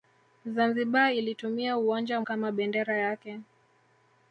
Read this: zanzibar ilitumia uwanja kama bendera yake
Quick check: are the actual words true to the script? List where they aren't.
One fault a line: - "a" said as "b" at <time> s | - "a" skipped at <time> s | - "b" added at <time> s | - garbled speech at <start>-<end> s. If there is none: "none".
none